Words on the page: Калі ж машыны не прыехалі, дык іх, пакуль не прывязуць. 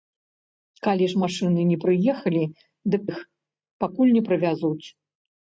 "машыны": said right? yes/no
yes